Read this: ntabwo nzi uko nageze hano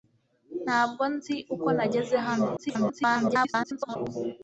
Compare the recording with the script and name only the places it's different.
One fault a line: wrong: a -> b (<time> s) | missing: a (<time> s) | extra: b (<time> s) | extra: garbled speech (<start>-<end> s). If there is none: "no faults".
extra: garbled speech (2.6-4.0 s)